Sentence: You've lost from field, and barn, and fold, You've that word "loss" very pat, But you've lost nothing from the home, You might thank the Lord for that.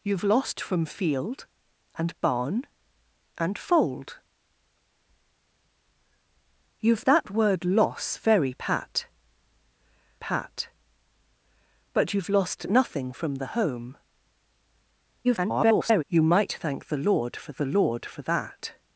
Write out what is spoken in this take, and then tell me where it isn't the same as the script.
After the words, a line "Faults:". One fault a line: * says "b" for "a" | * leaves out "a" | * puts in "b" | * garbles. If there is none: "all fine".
You've lost from field, and barn, and fold, You've that word "loss" very pat pat, But you've lost nothing from the home, [garbled] You might thank the Lord for the Lord for that.
Faults:
* puts in "pat"
* garbles
* puts in "the Lord for"